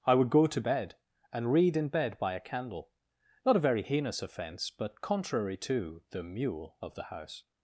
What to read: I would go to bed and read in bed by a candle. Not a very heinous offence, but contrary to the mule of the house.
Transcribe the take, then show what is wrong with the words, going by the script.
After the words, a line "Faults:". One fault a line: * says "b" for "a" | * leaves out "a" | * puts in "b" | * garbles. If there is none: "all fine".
I would go to bed and read in bed by a candle. Not a very heinous offence, but contrary to the mule of the house.
Faults:
all fine